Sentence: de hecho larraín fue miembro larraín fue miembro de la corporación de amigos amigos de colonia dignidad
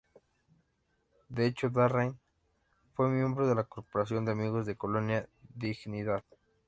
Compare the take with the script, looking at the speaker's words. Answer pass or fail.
fail